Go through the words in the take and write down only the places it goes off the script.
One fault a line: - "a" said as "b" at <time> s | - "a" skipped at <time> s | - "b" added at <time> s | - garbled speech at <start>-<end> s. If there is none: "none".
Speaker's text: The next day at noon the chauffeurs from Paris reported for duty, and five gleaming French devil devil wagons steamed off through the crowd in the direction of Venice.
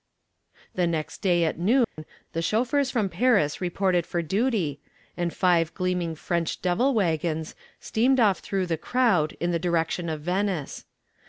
- "devil" skipped at 6.9 s